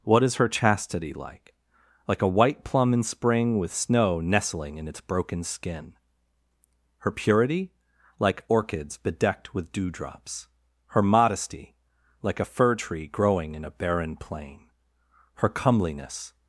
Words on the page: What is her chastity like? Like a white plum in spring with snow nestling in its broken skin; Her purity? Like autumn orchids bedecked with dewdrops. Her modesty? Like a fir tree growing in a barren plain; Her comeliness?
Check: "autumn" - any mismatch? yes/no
yes